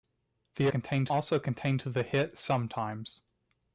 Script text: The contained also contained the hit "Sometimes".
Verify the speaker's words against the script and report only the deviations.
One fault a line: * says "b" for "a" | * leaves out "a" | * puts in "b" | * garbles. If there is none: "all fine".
all fine